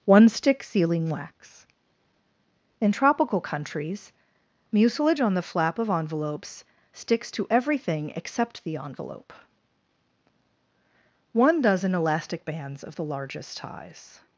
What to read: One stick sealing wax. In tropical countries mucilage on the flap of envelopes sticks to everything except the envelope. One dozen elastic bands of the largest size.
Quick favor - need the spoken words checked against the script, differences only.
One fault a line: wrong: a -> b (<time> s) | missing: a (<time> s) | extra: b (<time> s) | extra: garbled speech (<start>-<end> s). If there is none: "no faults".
no faults